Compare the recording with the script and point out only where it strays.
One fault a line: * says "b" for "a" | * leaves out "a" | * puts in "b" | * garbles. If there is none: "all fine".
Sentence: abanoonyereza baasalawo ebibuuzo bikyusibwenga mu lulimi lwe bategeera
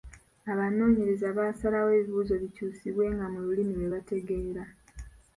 all fine